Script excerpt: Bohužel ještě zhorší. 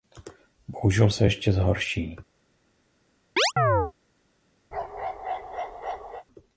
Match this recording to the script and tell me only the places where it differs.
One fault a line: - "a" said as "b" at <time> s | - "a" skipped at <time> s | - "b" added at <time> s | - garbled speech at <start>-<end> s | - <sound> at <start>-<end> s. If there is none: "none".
- "se" added at 1.1 s
- chirp at 3.4-3.9 s
- bark at 4.7-6.2 s